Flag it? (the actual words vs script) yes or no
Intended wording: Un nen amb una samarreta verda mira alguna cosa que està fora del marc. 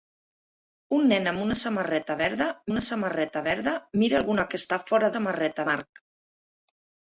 yes